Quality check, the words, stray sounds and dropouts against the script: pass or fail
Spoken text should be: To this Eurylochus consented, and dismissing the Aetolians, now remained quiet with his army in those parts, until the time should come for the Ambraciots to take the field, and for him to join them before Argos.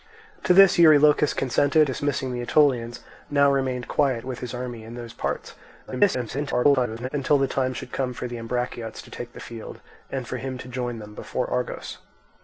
fail